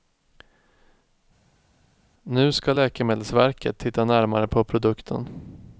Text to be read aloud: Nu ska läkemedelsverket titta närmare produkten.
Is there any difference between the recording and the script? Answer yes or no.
yes